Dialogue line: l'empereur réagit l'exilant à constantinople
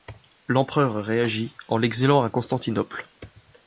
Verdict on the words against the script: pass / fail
fail